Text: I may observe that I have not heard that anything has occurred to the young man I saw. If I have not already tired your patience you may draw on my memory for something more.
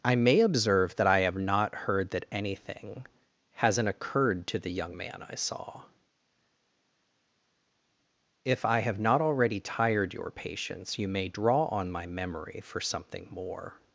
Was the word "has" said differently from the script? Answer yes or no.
yes